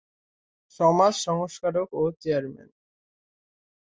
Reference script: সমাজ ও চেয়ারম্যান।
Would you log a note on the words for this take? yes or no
yes